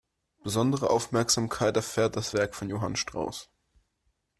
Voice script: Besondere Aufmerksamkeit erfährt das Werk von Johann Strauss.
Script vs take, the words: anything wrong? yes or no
no